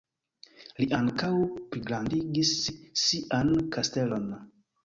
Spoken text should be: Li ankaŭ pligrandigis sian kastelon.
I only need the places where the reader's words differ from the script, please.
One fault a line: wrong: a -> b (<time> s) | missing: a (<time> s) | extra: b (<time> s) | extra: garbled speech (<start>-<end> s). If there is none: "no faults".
no faults